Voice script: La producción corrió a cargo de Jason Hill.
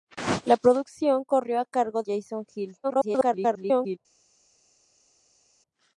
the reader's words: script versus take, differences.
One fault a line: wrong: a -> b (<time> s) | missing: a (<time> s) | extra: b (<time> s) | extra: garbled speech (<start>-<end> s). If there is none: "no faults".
missing: de (2.0 s)
extra: garbled speech (2.8-4.0 s)